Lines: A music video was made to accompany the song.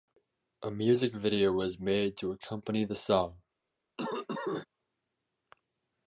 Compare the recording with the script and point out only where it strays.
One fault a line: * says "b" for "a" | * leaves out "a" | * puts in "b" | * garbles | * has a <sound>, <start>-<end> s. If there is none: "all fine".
* has a cough, 4.0-4.7 s